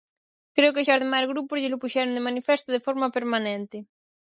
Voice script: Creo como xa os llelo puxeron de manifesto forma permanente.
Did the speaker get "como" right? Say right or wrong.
wrong